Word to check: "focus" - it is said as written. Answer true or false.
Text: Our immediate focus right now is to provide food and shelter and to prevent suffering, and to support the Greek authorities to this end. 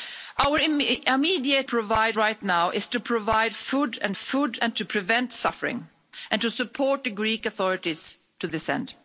false